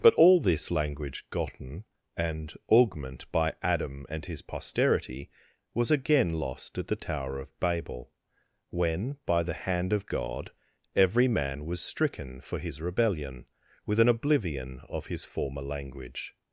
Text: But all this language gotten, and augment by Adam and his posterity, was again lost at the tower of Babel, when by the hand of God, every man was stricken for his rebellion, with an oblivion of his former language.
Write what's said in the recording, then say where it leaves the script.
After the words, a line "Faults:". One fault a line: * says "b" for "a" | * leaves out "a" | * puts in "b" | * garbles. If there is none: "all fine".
But all this language gotten, and augment by Adam and his posterity, was again lost at the tower of Babel, when by the hand of God, every man was stricken for his rebellion, with an oblivion of his former language.
Faults:
all fine